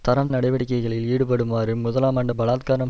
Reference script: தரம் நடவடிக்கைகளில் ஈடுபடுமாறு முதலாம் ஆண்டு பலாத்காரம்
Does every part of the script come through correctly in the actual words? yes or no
yes